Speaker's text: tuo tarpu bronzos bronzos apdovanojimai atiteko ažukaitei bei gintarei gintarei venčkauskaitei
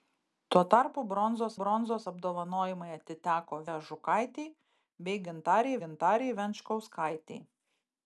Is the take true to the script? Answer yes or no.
yes